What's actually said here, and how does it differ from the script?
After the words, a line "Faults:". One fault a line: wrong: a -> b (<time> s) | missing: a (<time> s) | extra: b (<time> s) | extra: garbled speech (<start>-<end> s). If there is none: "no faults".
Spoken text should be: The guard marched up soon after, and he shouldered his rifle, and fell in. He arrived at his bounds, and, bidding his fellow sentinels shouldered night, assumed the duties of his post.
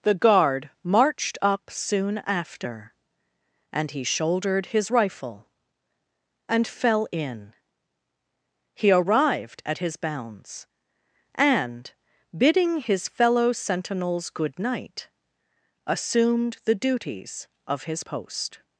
The guard marched up soon after, and he shouldered his rifle, and fell in. He arrived at his bounds, and, bidding his fellow sentinels good night, assumed the duties of his post.
Faults:
wrong: shouldered -> good (14.3 s)